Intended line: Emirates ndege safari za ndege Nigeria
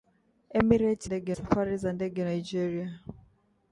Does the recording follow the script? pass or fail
pass